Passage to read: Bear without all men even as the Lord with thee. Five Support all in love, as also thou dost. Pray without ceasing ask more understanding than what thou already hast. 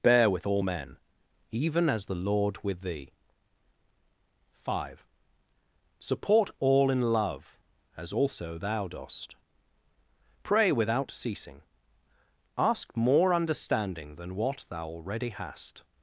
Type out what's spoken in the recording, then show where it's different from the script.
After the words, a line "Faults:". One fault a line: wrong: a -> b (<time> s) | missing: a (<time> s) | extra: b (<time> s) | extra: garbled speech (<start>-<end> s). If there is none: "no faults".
Bear with all men even as the Lord with thee. Five Support all in love, as also thou dost. Pray without ceasing ask more understanding than what thou already hast.
Faults:
wrong: without -> with (0.3 s)